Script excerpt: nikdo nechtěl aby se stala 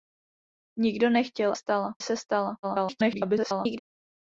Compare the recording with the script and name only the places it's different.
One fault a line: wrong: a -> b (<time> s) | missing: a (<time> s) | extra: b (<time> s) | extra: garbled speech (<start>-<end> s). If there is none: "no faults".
wrong: aby -> stala (1.5 s)
extra: garbled speech (2.6-3.8 s)